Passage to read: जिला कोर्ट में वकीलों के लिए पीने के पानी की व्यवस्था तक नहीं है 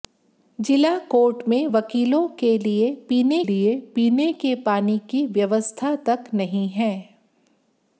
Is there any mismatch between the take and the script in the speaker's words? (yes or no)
yes